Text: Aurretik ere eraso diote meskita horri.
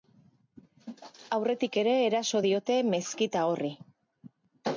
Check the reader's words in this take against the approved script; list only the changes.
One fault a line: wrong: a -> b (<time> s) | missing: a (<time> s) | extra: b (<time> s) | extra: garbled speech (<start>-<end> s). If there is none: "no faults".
no faults